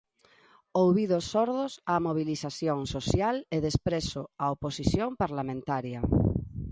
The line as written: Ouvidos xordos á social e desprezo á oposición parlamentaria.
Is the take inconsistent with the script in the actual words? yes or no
yes